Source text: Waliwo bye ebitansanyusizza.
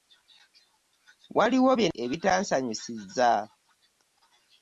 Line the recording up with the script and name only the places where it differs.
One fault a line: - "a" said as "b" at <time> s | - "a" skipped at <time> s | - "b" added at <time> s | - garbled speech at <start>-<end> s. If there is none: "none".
none